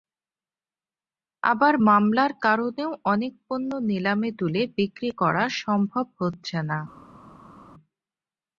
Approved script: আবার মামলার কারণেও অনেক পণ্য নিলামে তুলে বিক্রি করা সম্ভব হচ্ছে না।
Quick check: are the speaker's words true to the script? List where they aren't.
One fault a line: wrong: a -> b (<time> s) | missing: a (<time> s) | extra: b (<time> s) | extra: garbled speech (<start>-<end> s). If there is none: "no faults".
no faults